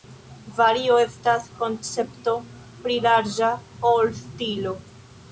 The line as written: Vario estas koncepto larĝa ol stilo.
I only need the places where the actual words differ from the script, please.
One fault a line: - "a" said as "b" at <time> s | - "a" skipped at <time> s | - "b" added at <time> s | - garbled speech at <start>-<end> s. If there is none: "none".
- "pli" added at 2.9 s